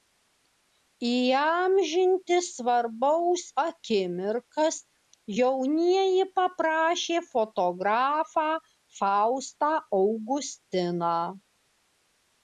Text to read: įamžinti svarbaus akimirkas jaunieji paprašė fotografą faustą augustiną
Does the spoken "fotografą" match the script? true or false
true